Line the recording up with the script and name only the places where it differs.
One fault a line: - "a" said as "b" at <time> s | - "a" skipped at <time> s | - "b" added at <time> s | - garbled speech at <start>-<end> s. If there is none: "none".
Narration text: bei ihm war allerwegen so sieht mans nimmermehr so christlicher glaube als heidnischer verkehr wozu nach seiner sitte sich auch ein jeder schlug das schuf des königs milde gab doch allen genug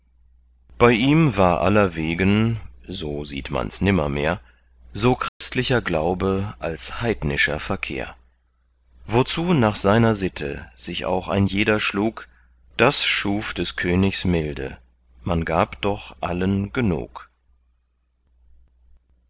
- "man" added at 15.2 s